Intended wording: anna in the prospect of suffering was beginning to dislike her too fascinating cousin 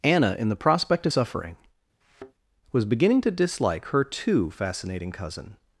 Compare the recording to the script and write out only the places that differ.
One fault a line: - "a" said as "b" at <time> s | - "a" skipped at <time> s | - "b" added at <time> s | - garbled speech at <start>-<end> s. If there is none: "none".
none